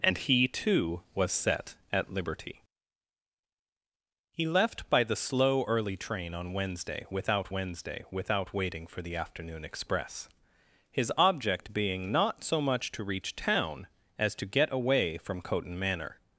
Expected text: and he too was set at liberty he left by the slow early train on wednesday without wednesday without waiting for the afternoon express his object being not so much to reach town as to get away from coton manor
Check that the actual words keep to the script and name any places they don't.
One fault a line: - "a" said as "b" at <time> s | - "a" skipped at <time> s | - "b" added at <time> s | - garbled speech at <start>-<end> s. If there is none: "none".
none